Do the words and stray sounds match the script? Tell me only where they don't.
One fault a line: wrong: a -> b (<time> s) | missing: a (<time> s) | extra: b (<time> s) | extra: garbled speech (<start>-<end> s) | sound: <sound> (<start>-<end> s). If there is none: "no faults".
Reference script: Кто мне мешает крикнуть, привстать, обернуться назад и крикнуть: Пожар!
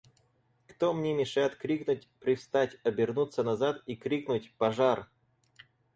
no faults